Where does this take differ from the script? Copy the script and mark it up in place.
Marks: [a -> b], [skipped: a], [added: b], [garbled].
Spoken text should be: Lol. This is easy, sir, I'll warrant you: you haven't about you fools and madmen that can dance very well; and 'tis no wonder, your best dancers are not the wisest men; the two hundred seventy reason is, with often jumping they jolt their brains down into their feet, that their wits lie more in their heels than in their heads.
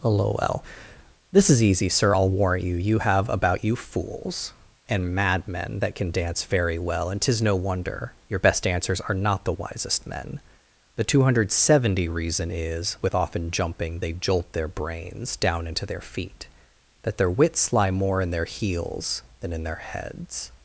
Lol. This is easy, sir, I'll warrant you: you [haven't -> have] about you fools and madmen that can dance very well; and 'tis no wonder, your best dancers are not the wisest men; the two hundred seventy reason is, with often jumping they jolt their brains down into their feet, that their wits lie more in their heels than in their heads.